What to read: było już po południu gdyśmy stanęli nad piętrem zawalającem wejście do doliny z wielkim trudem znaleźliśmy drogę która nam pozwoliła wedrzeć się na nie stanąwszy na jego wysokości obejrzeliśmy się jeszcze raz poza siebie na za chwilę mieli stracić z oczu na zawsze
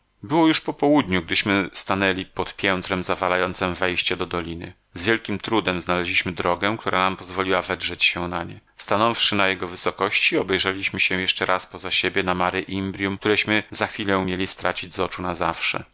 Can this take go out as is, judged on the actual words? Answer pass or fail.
fail